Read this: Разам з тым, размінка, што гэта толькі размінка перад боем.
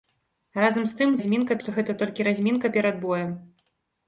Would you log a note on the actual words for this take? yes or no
no